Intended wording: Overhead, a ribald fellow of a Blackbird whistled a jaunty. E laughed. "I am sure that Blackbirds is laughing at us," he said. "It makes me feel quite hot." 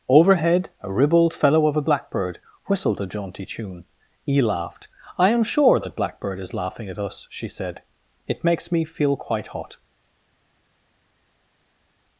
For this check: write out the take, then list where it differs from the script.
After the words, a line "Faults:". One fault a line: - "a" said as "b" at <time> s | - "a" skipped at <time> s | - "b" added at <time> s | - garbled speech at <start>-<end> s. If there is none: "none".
Overhead, a ribald fellow of a Blackbird whistled a jaunty tune. E laughed. "I am sure that Blackbird is laughing at us," she said. "It makes me feel quite hot."
Faults:
- "tune" added at 3.5 s
- "Blackbirds" said as "Blackbird" at 6.0 s
- "he" said as "she" at 7.3 s